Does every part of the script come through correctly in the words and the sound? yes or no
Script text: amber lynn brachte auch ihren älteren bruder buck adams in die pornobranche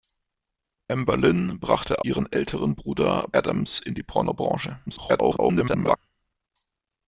no